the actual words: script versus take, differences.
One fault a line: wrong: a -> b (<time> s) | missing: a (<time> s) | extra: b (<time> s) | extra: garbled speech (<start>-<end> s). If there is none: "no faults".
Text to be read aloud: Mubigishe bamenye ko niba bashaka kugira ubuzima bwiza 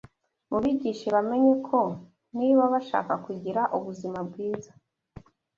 no faults